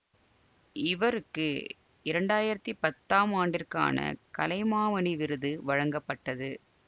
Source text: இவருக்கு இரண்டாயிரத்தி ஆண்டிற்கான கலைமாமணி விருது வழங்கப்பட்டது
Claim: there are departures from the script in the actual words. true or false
true